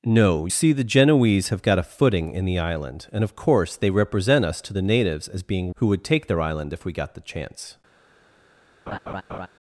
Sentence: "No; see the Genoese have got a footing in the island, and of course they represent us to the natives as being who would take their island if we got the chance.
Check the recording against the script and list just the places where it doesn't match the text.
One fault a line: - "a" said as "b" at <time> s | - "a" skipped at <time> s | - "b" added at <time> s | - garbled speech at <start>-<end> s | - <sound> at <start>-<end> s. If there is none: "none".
- laugh at 8.9-9.5 s